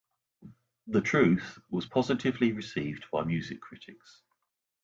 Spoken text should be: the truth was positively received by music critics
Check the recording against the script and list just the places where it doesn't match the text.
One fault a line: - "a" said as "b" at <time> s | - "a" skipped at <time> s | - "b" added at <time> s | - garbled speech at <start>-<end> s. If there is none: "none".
none